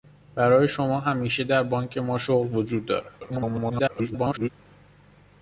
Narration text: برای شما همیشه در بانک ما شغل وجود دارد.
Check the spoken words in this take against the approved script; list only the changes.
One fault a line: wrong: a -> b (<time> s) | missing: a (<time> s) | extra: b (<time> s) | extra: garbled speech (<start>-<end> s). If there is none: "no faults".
extra: garbled speech (3.2-4.5 s)